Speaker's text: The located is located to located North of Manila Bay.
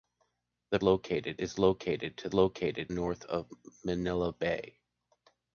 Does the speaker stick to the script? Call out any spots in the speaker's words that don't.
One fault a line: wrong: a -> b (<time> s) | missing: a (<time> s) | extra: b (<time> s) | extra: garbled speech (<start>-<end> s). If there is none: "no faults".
no faults